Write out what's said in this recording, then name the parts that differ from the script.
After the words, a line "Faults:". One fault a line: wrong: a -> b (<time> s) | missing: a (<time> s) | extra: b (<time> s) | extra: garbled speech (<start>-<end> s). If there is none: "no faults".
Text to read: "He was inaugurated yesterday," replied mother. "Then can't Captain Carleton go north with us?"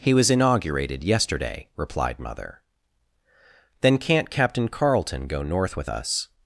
"He was inaugurated yesterday," replied mother. "Then can't Captain Carleton go north with us?"
Faults:
no faults